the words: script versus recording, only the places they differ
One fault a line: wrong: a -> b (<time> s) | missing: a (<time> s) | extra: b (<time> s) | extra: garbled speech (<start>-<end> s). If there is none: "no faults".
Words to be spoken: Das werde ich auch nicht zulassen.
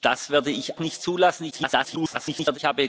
missing: auch (0.8 s)
extra: garbled speech (1.5-2.6 s)